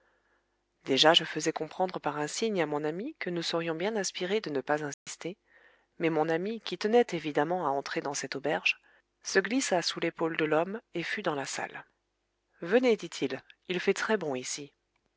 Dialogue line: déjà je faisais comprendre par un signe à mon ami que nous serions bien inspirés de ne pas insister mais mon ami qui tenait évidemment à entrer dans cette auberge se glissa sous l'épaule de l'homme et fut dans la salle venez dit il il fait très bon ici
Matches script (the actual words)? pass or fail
pass